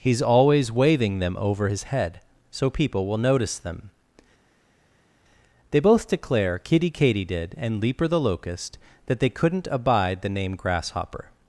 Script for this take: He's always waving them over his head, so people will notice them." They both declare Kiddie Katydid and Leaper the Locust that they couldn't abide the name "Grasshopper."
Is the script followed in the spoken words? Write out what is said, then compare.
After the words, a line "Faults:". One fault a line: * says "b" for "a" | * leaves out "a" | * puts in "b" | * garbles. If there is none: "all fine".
He's always waving them over his head, so people will notice them." They both declare Kiddie Katydid and Leaper the Locust that they couldn't abide the name "Grasshopper."
Faults:
all fine